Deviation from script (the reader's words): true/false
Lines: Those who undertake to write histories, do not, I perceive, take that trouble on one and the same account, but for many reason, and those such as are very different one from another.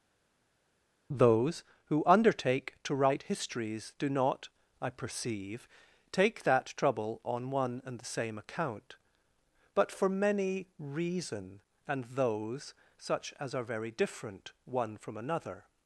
false